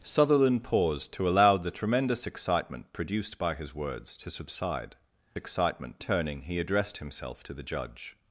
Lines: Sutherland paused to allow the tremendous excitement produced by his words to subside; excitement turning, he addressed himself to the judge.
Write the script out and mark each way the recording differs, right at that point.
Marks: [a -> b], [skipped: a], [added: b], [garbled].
Sutherland paused to allow the tremendous excitement produced by his words to subside; excitement turning, he addressed himself to the judge.